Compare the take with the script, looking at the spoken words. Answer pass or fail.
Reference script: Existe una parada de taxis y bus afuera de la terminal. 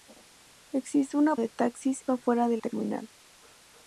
fail